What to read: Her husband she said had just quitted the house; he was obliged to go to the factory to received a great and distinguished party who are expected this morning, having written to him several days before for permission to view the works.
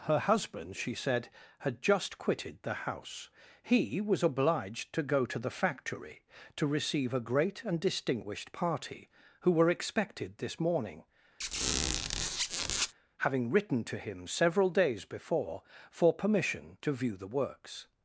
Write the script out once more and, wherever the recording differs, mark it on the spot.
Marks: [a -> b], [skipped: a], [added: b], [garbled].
Her husband she said had just quitted the house; he was obliged to go to the factory to [received -> receive] a great and distinguished party who [are -> were] expected this morning, having written to him several days before for permission to view the works.